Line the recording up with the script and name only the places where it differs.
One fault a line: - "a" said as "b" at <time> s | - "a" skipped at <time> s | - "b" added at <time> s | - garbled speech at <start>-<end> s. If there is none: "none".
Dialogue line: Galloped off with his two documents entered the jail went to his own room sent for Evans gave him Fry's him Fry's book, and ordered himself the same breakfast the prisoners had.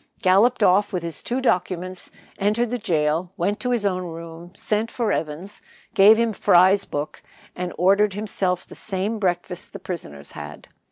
- "him Fry's" skipped at 6.8 s